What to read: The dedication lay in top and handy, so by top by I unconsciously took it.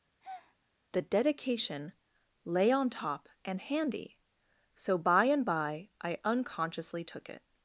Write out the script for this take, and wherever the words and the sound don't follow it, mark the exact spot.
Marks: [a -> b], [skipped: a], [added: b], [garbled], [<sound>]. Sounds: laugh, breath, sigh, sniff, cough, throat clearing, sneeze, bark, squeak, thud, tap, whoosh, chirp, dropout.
[breath] The dedication lay [in -> on] top and handy, so by [top -> and] by I unconsciously took it.